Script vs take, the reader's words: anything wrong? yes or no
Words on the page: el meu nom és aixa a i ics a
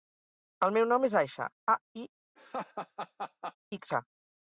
no